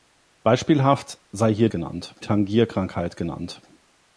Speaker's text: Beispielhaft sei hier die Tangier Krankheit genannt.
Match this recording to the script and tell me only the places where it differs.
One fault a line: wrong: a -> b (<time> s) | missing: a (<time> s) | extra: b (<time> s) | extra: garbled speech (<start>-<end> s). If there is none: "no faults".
wrong: die -> genannt (1.7 s)